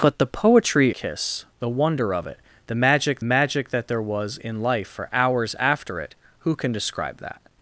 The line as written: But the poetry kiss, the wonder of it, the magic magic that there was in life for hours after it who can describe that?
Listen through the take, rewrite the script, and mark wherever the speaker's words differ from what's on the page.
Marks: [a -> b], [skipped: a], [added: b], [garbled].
But the poetry kiss, the wonder of it, the magic magic that there was in life for hours after it who can describe that?